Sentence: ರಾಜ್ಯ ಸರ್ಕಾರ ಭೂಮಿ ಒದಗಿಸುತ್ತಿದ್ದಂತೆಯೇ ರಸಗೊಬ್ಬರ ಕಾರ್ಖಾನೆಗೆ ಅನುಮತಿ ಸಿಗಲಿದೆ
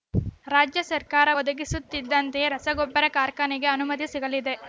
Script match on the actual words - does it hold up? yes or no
no